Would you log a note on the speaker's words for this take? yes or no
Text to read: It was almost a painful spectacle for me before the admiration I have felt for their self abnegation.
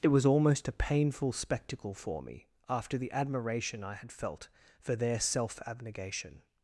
yes